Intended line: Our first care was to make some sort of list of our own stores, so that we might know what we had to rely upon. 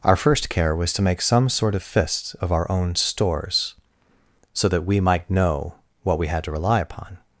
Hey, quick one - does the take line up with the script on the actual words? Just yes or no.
no